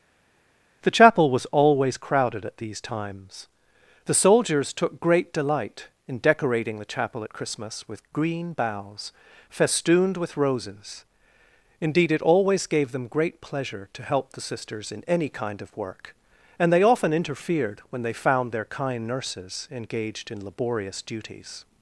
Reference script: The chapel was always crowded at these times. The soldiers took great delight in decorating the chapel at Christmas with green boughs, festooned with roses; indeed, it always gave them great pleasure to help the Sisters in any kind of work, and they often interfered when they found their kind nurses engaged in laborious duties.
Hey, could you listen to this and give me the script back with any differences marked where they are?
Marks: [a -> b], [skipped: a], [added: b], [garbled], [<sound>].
The chapel was always crowded at these times. The soldiers took great delight in decorating the chapel at Christmas with green boughs, festooned with roses; indeed, it always gave them great pleasure to help the Sisters in any kind of work, and they often interfered when they found their kind nurses engaged in laborious duties.